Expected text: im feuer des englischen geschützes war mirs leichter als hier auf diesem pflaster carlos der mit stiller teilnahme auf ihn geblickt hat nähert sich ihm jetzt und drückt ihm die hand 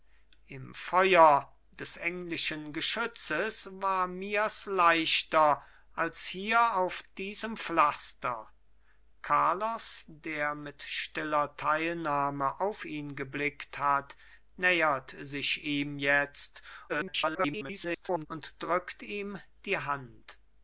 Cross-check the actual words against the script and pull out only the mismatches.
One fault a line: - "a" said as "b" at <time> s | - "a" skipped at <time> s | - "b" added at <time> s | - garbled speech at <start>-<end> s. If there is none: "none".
- garbled speech at 16.9-18.3 s